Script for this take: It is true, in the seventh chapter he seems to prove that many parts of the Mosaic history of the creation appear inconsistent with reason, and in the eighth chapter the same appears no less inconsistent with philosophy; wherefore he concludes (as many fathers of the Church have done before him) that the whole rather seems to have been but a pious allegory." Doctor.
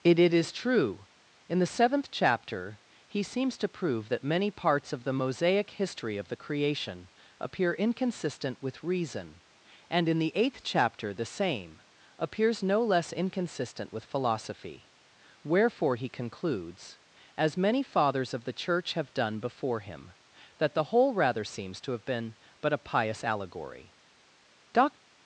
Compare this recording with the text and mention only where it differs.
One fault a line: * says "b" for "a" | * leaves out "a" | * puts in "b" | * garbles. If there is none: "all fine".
* puts in "it"